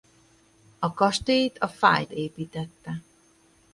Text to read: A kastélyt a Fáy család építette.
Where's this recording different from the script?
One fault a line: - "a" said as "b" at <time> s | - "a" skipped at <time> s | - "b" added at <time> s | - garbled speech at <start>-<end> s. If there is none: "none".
- "család" skipped at 2.1 s